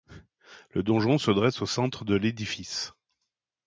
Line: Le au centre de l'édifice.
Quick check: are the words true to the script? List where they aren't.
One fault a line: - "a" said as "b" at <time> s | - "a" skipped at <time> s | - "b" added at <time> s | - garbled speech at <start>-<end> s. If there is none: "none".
- "donjon se dresse" added at 0.8 s